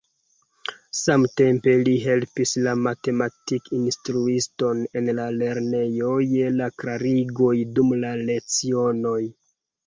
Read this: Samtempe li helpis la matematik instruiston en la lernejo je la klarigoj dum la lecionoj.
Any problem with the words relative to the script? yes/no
no